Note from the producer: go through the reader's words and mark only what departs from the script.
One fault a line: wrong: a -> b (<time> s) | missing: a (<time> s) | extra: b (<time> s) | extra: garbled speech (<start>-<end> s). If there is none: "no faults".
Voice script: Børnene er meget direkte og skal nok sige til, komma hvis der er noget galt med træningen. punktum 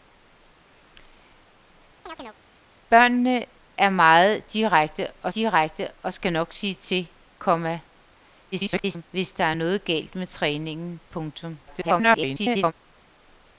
extra: direkte og (5.3 s)
extra: garbled speech (8.5-9.0 s)
extra: garbled speech (11.7-12.7 s)